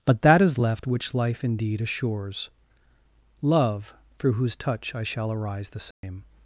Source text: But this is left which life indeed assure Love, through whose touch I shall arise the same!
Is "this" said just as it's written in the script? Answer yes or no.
no